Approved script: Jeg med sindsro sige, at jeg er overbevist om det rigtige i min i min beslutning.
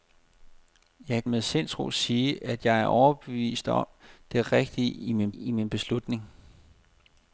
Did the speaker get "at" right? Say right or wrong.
right